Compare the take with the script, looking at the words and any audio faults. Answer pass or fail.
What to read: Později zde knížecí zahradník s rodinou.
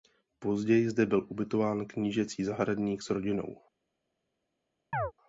fail